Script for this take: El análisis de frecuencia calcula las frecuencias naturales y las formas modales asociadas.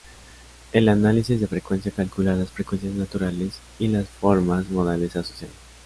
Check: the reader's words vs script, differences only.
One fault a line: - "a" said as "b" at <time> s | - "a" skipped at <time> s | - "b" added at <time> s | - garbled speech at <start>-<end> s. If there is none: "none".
none